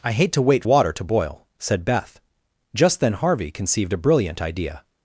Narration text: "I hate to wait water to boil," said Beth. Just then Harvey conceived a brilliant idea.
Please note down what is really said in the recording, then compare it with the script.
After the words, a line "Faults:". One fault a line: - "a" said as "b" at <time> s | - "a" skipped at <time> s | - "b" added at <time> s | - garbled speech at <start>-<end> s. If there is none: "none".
"I hate to wait water to boil," said Beth. Just then Harvey conceived a brilliant idea.
Faults:
none